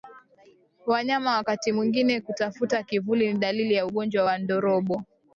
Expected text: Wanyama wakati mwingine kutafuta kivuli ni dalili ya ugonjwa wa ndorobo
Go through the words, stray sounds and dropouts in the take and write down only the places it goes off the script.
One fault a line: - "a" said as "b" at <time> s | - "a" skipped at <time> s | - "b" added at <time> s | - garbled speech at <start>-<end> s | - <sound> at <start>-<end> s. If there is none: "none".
none